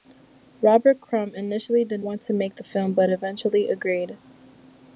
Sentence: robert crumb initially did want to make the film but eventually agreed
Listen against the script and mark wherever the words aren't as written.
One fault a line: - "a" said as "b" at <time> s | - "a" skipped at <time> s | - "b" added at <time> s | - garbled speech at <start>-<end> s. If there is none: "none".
none